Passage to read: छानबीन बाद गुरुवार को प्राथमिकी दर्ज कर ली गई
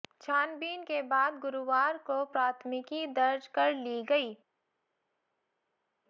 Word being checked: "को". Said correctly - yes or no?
yes